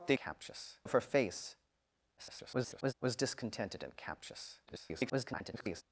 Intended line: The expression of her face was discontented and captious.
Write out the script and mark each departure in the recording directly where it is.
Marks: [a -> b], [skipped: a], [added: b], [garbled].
The [expression -> captious] of her face [garbled] was discontented and captious. [garbled]